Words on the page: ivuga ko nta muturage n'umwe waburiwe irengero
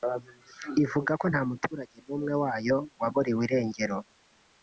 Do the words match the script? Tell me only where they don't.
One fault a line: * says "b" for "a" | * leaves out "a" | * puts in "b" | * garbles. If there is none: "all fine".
* puts in "wayo"